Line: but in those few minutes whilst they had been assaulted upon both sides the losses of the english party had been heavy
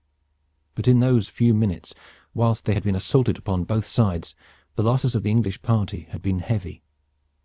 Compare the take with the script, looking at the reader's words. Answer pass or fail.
pass